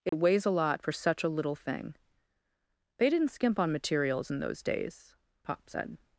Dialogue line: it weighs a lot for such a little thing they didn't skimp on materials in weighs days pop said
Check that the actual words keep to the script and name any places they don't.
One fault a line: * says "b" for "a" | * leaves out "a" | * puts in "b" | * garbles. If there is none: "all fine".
* says "those" for "weighs"